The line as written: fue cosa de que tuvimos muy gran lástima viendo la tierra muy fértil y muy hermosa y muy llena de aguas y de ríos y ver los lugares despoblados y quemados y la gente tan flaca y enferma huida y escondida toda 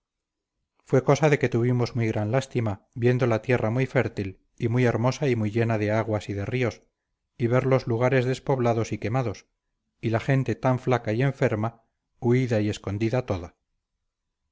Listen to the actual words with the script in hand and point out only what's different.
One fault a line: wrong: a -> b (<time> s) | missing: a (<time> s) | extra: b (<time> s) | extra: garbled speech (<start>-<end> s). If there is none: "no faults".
no faults